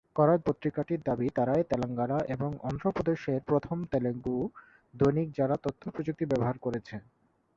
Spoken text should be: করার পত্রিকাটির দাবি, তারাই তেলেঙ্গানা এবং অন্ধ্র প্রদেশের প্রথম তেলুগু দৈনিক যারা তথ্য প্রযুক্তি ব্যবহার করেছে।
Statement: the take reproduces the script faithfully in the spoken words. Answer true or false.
true